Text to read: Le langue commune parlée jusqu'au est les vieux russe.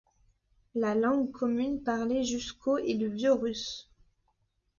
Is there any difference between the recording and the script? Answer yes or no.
yes